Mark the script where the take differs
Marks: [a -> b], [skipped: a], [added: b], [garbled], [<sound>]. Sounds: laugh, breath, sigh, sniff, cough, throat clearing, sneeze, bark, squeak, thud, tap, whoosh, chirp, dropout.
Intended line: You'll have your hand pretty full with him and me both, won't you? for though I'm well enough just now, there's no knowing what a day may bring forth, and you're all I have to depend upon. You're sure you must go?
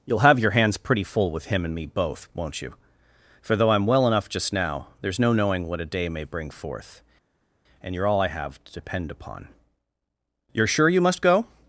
You'll have your [hand -> hands] pretty full with him and me both, won't you? for though I'm well enough just now, there's no knowing what a day may bring forth, and you're all I have to depend upon. You're sure you must go?